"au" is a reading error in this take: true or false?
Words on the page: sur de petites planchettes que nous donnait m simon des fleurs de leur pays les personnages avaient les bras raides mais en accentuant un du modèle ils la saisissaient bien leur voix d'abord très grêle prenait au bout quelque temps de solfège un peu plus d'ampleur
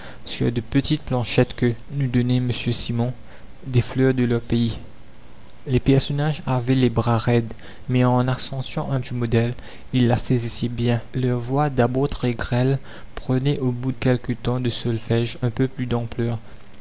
false